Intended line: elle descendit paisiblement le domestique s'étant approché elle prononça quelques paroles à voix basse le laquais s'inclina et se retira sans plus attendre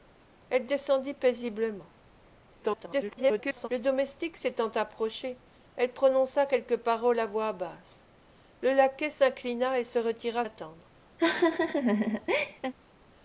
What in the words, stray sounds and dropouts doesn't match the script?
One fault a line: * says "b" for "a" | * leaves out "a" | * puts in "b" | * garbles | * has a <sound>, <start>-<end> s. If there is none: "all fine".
* garbles
* leaves out "sans plus"
* has a laugh, 11.2-12.7 s